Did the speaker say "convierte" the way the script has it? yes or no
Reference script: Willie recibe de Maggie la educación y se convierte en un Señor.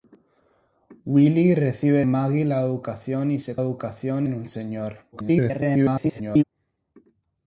no